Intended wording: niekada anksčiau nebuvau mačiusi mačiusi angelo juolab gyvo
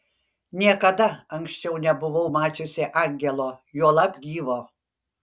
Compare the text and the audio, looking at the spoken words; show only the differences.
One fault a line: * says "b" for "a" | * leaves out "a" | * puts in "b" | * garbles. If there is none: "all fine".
* leaves out "mačiusi"